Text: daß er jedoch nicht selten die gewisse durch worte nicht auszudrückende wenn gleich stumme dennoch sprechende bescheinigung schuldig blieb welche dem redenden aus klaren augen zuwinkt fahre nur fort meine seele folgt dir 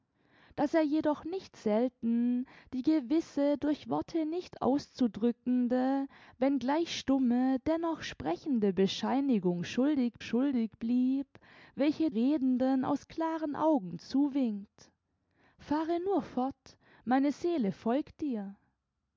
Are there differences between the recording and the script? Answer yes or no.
yes